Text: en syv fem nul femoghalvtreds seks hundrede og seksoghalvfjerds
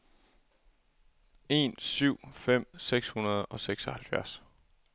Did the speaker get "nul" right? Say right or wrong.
wrong